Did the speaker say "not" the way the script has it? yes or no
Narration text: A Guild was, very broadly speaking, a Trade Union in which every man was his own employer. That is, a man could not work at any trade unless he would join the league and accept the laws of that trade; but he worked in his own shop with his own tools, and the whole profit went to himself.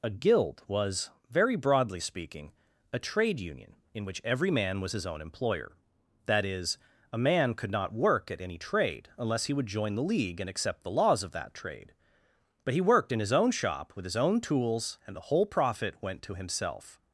yes